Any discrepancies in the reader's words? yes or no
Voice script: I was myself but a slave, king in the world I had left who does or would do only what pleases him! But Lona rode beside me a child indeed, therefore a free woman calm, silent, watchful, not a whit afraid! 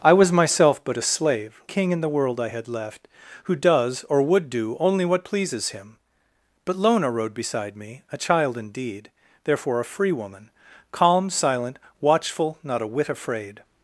no